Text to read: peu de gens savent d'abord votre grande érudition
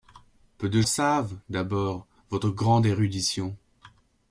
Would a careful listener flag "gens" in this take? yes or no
yes